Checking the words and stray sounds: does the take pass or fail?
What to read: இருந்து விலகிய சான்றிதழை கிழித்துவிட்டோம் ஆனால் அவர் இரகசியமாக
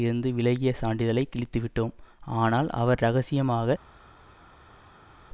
pass